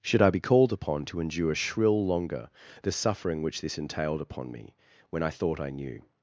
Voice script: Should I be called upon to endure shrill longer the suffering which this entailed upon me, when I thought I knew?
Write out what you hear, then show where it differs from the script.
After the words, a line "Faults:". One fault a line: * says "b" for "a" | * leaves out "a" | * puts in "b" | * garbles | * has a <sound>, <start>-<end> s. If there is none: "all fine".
Should I be called upon to endure shrill longer the suffering which this entailed upon me, when I thought I knew?
Faults:
all fine